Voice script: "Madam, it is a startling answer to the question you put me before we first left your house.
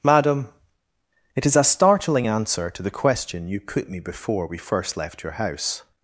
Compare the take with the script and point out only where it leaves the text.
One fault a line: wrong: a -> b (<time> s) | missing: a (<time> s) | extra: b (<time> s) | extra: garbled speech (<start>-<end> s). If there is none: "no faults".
no faults